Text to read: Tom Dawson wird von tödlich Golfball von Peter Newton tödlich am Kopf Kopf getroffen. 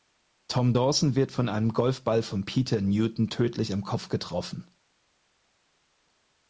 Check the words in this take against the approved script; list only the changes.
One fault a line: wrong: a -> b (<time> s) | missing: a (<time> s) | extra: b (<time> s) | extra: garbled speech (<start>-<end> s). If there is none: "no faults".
wrong: tödlich -> einem (1.5 s)
missing: Kopf (4.1 s)